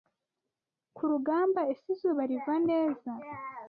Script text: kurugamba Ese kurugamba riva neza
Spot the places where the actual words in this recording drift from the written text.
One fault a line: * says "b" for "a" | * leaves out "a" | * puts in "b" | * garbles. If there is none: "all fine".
* says "izuba" for "kurugamba"